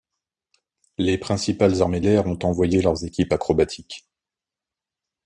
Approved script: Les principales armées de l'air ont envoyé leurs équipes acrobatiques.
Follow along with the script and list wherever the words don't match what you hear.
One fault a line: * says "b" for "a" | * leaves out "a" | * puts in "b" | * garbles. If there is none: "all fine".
all fine